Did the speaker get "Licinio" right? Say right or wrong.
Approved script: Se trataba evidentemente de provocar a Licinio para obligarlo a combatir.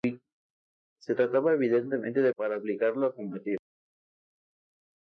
wrong